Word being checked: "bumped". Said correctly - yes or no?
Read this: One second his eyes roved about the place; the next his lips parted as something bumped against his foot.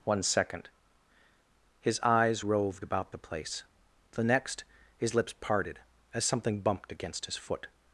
yes